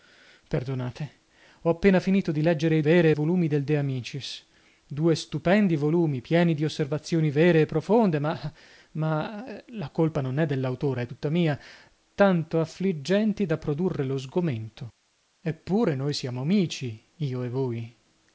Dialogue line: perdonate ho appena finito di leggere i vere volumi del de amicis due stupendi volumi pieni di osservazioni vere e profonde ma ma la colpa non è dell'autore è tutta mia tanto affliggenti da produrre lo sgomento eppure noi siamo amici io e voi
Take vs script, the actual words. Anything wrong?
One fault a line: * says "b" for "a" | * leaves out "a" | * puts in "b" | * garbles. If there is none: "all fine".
all fine